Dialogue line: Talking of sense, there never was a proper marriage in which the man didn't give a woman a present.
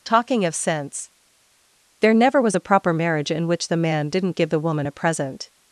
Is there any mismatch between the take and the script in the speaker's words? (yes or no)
yes